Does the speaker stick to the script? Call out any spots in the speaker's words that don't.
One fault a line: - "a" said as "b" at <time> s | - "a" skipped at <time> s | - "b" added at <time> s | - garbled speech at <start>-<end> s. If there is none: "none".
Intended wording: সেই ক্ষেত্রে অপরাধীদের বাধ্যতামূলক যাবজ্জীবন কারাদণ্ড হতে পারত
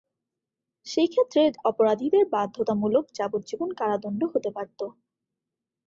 none